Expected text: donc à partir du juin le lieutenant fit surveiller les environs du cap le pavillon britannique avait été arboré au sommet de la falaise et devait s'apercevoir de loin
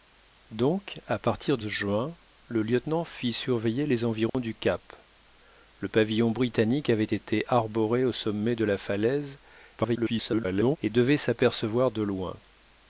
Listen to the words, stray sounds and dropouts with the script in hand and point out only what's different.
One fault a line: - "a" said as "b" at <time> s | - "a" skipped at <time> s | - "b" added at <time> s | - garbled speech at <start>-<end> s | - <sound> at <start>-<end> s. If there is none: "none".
- "du" skipped at 1.6 s
- dropout at 4.3-4.3 s
- garbled speech at 9.8-10.8 s